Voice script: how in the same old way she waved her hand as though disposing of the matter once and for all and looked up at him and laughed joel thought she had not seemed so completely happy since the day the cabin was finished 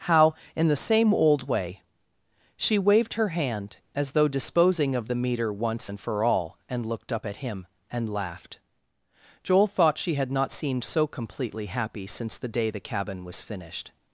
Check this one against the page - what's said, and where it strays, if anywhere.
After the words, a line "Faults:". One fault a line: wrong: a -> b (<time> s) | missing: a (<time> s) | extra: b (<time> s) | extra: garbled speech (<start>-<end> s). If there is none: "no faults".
how in the same old way she waved her hand as though disposing of the meter once and for all and looked up at him and laughed joel thought she had not seemed so completely happy since the day the cabin was finished
Faults:
wrong: matter -> meter (5.2 s)